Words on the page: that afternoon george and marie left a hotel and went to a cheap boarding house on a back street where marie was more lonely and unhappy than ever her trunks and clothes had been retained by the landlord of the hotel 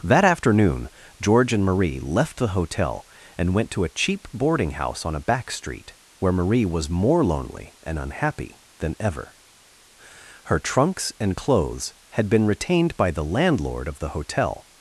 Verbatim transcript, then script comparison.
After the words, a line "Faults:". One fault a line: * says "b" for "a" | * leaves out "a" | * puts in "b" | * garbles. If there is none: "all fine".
that afternoon george and marie left the hotel and went to a cheap boarding house on a back street where marie was more lonely and unhappy than ever her trunks and clothes had been retained by the landlord of the hotel
Faults:
* says "the" for "a"